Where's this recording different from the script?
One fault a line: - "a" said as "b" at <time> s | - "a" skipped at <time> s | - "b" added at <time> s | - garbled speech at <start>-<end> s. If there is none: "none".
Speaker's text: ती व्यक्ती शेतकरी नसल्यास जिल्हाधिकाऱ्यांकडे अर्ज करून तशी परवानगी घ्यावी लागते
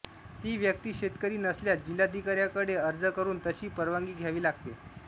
none